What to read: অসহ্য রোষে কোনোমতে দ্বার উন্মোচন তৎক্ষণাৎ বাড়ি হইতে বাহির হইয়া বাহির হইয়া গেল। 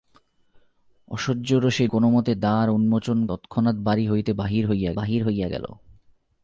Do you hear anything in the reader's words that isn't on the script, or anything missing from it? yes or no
no